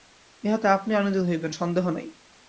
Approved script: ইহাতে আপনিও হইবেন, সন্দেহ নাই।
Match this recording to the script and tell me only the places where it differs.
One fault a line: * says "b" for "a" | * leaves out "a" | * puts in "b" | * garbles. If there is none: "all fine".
* puts in "আনন্দিত"